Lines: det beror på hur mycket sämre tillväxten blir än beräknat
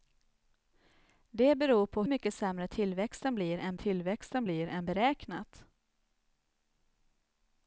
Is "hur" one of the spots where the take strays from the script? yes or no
yes